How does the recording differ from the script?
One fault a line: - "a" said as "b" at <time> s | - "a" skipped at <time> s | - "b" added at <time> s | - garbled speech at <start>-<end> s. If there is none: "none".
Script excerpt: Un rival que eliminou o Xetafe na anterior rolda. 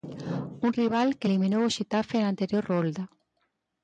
none